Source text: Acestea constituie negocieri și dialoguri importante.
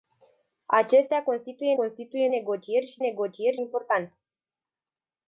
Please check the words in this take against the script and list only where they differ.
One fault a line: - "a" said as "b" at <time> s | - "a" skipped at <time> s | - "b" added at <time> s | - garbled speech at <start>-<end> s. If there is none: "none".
- "constituie" added at 1.7 s
- "dialoguri" said as "negocieri" at 3.0 s